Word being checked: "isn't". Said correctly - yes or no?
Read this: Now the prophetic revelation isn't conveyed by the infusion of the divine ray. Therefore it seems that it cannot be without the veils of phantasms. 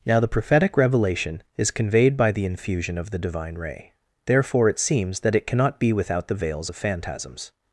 no